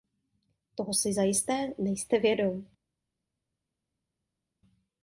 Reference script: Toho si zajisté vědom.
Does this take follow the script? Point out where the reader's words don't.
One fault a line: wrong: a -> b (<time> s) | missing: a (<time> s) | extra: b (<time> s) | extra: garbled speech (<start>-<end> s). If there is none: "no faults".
extra: nejste (1.8 s)